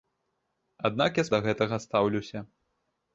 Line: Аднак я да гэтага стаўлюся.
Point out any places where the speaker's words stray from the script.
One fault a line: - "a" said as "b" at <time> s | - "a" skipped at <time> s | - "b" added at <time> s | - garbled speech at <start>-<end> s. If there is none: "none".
none